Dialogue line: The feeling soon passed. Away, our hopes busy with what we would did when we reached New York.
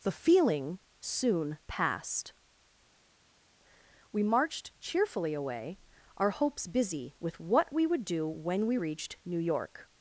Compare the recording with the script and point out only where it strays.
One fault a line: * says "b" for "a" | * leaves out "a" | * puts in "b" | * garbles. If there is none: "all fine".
* puts in "We marched cheerfully"
* says "do" for "did"